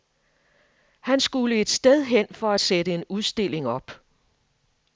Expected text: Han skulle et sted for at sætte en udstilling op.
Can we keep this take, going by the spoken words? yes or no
no